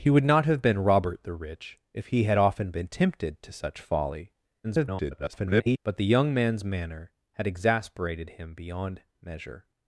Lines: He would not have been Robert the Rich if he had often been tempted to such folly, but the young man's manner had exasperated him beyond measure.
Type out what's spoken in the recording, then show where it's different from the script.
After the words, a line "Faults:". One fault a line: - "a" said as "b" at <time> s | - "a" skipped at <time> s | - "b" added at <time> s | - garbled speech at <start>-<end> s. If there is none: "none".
He would not have been Robert the Rich if he had often been tempted to such folly, [garbled] but the young man's manner had exasperated him beyond measure.
Faults:
- garbled speech at 4.6-5.8 s